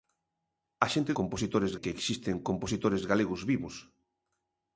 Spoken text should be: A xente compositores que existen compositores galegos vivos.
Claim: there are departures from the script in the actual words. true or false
false